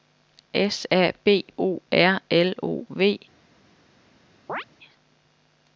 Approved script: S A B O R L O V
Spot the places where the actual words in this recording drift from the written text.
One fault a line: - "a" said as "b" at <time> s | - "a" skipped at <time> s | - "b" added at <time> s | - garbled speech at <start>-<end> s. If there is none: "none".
none